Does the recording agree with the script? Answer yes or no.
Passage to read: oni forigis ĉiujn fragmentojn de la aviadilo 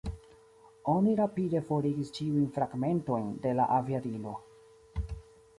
no